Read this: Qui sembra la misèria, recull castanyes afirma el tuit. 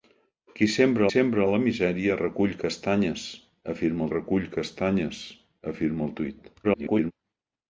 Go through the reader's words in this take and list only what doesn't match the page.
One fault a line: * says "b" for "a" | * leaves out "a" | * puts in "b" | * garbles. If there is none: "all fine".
* puts in "sembra"
* puts in "recull castanyes afirma"
* garbles